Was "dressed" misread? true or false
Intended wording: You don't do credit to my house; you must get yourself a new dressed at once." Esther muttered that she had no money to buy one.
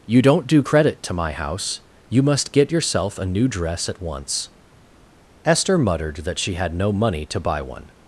true